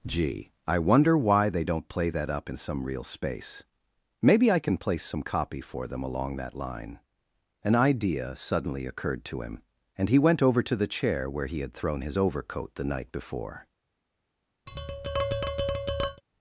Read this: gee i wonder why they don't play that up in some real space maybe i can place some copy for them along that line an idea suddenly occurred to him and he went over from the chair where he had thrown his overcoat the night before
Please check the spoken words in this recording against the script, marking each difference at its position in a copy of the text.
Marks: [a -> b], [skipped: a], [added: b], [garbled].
gee i wonder why they don't play that up in some real space maybe i can place some copy for them along that line an idea suddenly occurred to him and he went over [from -> to] the chair where he had thrown his overcoat the night before